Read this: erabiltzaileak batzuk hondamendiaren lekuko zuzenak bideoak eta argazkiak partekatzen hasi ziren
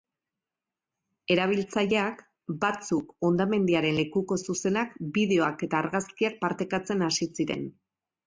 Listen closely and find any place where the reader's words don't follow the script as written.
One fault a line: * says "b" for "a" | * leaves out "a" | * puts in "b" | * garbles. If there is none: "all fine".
all fine